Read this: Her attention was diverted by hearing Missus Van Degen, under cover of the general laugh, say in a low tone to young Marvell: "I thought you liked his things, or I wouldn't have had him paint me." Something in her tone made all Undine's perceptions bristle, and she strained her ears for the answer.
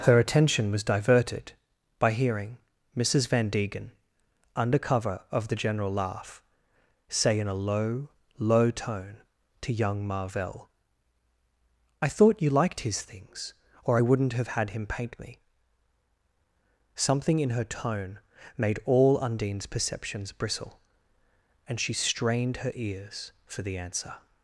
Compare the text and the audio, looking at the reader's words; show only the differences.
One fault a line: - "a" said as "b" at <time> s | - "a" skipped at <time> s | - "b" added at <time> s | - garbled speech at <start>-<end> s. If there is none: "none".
- "low" added at 8.4 s